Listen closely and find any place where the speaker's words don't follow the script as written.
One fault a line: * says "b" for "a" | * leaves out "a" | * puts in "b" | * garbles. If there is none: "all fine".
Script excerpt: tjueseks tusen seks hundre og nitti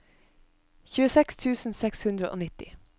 all fine